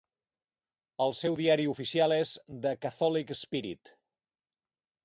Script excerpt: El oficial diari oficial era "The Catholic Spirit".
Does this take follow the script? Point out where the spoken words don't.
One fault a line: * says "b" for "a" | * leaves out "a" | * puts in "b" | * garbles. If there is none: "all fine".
* says "seu" for "oficial"
* says "és" for "era"